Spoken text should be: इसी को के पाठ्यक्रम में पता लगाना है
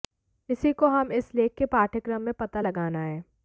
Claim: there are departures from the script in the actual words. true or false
true